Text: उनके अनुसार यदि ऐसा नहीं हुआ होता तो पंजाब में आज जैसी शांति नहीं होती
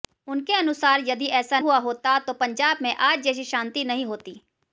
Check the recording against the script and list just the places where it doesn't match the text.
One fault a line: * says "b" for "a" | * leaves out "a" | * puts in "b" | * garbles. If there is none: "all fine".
* leaves out "नहीं"